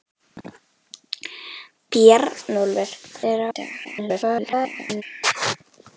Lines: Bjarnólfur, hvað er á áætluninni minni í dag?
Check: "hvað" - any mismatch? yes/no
yes